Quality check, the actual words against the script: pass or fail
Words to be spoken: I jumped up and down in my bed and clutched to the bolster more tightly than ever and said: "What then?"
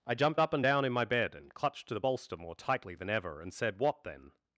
pass